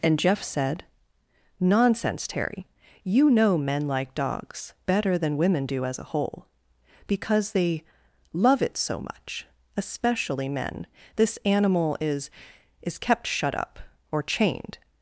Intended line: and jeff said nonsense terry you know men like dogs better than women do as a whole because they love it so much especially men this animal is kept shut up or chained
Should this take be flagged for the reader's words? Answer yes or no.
yes